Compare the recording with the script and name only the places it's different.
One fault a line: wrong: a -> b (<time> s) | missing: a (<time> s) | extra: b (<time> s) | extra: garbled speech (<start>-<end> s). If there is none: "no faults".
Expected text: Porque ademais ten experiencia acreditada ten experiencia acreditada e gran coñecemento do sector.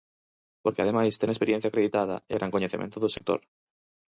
missing: ten experiencia acreditada (2.1 s)